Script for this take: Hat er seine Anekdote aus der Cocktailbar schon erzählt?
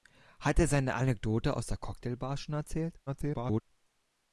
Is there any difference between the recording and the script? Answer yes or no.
yes